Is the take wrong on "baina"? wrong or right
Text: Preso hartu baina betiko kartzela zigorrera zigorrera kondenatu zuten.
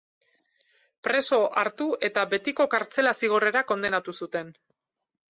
wrong